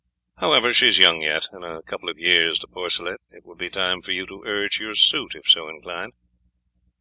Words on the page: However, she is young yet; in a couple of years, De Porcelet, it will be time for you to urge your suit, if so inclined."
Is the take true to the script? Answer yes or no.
yes